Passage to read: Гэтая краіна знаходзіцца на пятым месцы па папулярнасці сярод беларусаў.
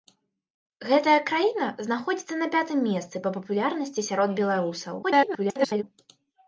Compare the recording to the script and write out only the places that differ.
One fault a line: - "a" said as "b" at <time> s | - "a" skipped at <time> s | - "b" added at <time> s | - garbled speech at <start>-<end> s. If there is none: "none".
- garbled speech at 5.0-5.8 s